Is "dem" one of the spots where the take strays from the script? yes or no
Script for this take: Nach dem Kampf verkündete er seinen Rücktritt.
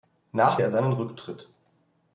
yes